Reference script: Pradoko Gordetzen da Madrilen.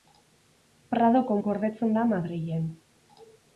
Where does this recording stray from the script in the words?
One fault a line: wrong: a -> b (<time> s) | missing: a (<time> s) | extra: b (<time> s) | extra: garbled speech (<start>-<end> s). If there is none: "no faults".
no faults